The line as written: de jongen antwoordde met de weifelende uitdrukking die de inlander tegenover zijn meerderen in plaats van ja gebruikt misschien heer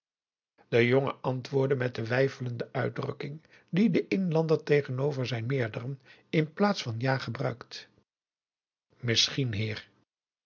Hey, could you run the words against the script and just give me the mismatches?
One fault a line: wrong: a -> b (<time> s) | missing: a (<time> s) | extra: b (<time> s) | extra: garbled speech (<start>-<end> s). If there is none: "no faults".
no faults